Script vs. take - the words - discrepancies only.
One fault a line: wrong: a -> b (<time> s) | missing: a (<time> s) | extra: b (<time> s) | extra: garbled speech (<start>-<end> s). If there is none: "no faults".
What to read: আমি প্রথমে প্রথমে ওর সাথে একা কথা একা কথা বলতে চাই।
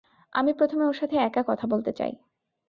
missing: প্রথমে (0.8 s)
missing: একা কথা (1.6 s)